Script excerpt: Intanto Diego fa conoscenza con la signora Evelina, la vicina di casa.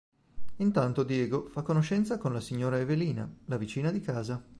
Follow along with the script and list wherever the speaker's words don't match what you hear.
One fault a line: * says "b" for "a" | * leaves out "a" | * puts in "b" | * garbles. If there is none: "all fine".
all fine